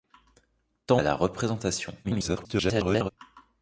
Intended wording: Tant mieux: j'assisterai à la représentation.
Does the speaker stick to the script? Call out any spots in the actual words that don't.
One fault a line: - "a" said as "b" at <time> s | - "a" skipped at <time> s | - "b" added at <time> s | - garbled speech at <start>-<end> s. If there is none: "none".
- "mieux j'assisterai" skipped at 1.0 s
- garbled speech at 2.0-3.1 s